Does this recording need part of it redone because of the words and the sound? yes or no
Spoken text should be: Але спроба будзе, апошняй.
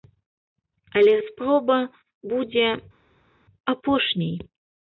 no